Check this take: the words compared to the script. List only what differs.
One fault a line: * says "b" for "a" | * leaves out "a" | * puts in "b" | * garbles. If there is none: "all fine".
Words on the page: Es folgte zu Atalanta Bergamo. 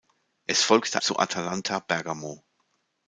all fine